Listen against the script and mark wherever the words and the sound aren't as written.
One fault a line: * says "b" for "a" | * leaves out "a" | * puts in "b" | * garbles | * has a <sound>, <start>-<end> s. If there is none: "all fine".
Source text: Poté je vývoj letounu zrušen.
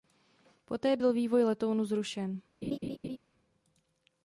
* says "byl" for "je"
* has a laugh, 2.6-3.2 s